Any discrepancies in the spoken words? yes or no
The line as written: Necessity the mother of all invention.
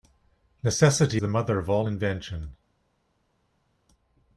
no